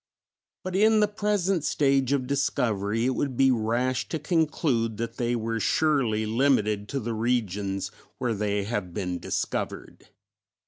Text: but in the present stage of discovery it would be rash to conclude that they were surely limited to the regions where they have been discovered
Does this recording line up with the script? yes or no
yes